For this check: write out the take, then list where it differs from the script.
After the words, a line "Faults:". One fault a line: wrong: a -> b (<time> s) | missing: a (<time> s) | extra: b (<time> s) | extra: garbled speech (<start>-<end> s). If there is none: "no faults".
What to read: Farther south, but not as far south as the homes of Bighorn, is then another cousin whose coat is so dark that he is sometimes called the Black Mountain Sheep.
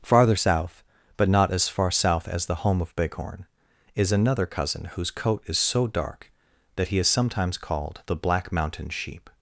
Farther south, but not as far south as the home of Bighorn, is another cousin whose coat is so dark that he is sometimes called the Black Mountain Sheep.
Faults:
wrong: homes -> home (2.6 s)
missing: then (4.1 s)